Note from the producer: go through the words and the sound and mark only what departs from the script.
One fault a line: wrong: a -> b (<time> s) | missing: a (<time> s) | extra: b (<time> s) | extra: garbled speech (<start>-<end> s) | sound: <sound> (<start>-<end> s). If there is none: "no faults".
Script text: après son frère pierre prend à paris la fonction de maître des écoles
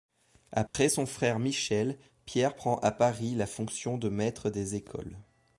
sound: dropout (0.7-0.7 s)
extra: michel (1.4 s)